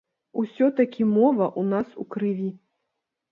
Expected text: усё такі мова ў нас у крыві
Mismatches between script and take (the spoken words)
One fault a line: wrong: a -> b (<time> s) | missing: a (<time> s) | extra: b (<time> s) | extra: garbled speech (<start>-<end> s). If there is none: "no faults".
no faults